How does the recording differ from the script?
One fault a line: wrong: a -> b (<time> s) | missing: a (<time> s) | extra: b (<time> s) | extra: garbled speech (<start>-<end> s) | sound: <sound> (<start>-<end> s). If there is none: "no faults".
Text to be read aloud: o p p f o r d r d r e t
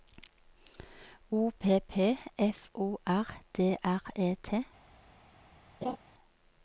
missing: d r (4.0 s)
sound: laugh (5.8-6.0 s)